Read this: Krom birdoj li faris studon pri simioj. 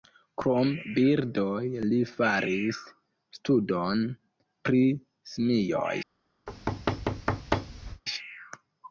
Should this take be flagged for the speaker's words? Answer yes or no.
no